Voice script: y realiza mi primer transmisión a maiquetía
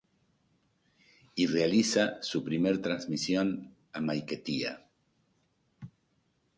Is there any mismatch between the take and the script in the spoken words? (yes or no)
yes